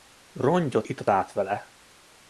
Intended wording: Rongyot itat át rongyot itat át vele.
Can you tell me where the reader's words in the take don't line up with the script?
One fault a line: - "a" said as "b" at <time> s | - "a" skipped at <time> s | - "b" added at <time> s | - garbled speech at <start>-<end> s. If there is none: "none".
- "rongyot itat át" skipped at 1.3 s